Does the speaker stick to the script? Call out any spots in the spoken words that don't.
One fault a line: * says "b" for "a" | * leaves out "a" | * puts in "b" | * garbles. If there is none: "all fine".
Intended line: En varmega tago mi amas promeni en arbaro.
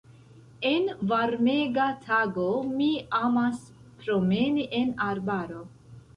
all fine